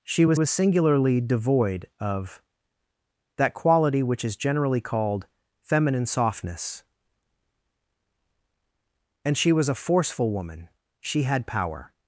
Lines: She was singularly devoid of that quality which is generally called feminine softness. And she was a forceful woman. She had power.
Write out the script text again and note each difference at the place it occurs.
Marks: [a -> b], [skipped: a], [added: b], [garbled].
She was [added: was] singularly devoid of that quality which is generally called feminine softness. And she was a forceful woman. She had power.